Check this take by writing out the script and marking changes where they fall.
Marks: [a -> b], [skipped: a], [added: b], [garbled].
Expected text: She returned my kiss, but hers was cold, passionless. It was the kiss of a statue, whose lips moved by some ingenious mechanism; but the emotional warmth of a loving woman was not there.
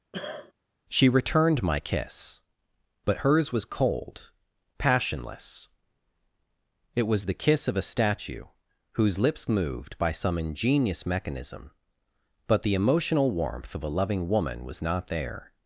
She returned my kiss, but hers was cold, passionless. It was the kiss of a statue, whose lips moved by some ingenious mechanism; but the emotional warmth of a loving woman was not there.